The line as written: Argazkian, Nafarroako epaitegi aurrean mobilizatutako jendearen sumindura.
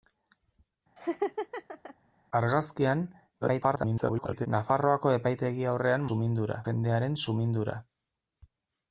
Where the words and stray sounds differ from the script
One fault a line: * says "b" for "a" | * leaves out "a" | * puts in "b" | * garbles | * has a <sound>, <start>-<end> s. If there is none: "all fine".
* has a laugh, 1.0-2.0 s
* garbles
* says "sumindura" for "mobilizatutako"